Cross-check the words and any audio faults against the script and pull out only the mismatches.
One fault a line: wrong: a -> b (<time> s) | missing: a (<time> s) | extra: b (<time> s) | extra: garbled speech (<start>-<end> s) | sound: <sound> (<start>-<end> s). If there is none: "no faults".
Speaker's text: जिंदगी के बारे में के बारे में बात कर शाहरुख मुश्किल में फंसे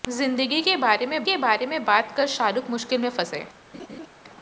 sound: laugh (3.7-4.1 s)